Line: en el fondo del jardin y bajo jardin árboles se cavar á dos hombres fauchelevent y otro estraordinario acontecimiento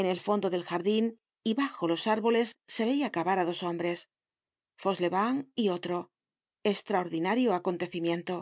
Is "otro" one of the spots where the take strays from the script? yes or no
no